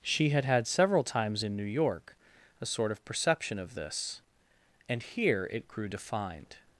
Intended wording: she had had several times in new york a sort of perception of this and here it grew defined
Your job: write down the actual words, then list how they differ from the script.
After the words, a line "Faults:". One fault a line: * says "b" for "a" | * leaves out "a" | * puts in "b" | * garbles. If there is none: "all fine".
she had had several times in new york a sort of perception of this and here it grew defined
Faults:
all fine